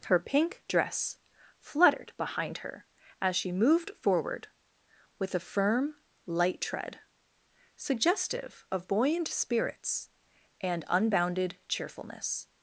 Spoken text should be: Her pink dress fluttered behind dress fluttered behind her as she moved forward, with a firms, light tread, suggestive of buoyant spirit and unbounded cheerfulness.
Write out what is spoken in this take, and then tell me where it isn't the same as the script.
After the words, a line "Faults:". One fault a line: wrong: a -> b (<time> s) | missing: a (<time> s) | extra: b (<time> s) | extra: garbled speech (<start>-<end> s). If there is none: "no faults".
Her pink dress fluttered behind her as she moved forward, with a firm, light tread, suggestive of buoyant spirits and unbounded cheerfulness.
Faults:
missing: dress fluttered behind (2.6 s)
wrong: firms -> firm (5.4 s)
wrong: spirit -> spirits (9.3 s)